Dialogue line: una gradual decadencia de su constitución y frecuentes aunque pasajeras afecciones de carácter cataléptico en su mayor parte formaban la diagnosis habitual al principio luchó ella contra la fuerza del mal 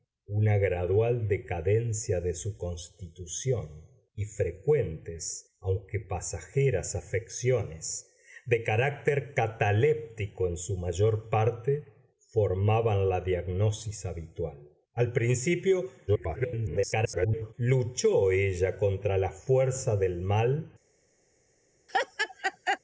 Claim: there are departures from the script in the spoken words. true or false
true